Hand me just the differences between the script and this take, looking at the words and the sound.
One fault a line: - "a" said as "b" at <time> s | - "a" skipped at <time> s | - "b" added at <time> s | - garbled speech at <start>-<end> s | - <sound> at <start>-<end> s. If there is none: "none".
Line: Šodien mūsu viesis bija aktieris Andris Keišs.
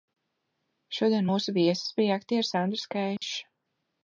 - dropout at 3.2-3.2 s